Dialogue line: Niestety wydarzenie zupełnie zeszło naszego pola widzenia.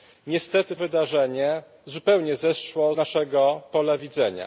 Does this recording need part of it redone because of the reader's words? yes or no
no